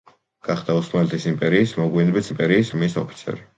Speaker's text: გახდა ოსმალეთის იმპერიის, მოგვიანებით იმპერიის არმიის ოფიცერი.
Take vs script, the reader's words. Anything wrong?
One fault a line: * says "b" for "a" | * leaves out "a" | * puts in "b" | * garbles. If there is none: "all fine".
all fine